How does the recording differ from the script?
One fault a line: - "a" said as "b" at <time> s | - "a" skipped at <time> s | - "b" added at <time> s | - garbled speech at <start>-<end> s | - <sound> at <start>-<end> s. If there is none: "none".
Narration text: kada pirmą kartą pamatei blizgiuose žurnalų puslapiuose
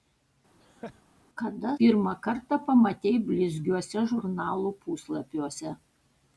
- laugh at 0.6-1.0 s